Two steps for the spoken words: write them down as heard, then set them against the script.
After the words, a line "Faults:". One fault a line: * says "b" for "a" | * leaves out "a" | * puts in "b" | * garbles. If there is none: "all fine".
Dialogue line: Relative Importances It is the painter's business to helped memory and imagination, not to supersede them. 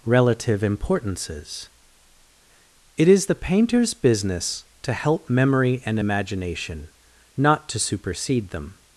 Relative Importances It is the painter's business to help memory and imagination, not to supersede them.
Faults:
* says "help" for "helped"